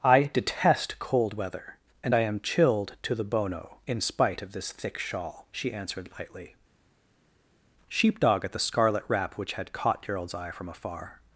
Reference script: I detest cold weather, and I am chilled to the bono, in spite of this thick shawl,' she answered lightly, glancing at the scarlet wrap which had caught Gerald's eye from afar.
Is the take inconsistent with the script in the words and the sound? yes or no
yes